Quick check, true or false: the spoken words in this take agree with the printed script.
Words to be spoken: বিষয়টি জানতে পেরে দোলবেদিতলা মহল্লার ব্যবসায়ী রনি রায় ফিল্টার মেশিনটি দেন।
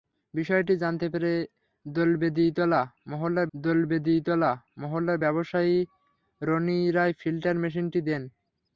false